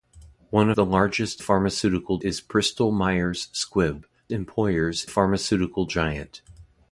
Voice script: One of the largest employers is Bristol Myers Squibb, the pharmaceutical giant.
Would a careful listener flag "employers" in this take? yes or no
yes